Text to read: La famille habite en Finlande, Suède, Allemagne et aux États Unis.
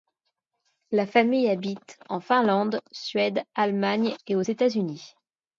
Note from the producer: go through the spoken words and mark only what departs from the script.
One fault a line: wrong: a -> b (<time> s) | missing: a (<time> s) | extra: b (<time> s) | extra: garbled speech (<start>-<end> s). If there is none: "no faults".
no faults